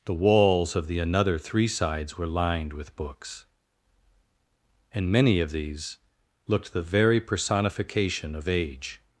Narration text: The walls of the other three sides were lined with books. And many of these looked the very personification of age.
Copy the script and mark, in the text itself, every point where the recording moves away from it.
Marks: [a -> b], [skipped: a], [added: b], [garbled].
The walls of the [other -> another] three sides were lined with books. And many of these looked the very personification of age.